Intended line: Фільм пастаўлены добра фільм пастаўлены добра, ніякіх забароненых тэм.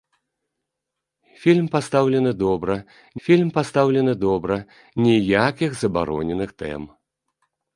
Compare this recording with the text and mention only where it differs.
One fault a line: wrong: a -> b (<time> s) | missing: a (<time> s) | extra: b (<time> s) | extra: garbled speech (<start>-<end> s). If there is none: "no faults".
no faults